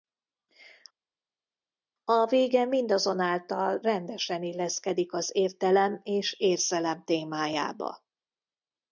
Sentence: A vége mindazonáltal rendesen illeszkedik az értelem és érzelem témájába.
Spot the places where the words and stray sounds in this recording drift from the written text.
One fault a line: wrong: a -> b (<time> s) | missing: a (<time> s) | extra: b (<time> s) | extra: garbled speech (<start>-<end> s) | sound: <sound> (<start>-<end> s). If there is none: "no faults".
no faults